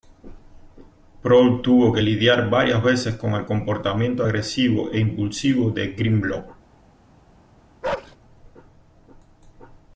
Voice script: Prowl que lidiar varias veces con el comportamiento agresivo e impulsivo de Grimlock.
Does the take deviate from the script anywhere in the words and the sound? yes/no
yes